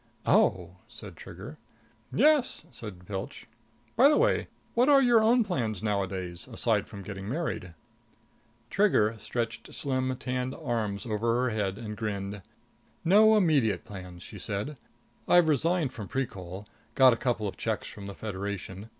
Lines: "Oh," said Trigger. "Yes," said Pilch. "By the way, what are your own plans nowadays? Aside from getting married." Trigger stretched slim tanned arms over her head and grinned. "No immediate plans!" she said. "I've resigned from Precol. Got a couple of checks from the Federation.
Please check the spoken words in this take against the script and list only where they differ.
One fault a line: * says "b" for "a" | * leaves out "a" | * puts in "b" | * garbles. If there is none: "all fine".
all fine